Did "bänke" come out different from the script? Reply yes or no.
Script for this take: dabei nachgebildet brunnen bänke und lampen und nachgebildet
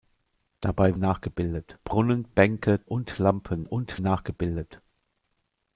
no